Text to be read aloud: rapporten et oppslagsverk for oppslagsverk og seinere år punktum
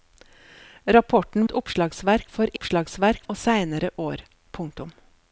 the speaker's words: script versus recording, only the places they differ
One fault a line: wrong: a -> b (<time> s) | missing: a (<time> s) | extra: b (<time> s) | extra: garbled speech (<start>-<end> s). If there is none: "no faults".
no faults